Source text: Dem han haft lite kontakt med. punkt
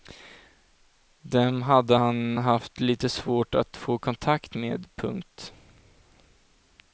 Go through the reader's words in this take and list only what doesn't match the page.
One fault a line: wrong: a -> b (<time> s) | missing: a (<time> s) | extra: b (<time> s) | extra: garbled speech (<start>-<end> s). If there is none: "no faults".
extra: hade (1.6 s)
extra: svårt att få (3.1 s)